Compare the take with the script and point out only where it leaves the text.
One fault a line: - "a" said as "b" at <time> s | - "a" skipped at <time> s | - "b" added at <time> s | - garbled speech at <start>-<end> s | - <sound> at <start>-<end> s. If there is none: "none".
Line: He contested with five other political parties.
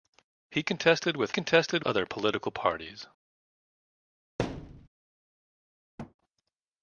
- "five" said as "contested" at 1.3 s
- thud at 4.4-4.9 s
- thud at 6.0-6.1 s